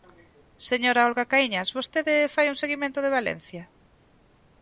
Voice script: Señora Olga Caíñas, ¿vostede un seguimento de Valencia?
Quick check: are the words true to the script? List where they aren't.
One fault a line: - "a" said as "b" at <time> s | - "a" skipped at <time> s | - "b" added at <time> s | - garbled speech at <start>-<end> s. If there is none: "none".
- "fai" added at 2.4 s